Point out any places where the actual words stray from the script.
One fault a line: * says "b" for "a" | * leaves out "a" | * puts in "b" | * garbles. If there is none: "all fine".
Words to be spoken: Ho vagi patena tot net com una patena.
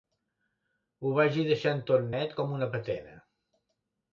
* says "deixant" for "patena"